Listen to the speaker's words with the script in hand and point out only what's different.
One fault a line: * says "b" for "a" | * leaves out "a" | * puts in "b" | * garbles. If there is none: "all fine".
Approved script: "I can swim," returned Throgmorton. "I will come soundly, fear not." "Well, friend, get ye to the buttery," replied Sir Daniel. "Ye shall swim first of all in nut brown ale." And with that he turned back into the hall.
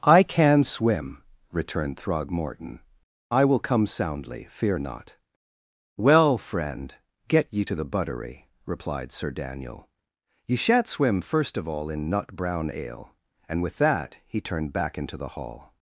* says "shan't" for "shall"